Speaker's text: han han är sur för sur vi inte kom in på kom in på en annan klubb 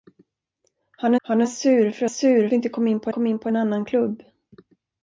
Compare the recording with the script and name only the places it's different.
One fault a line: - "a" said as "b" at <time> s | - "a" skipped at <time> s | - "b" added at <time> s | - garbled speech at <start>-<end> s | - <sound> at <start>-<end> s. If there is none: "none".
none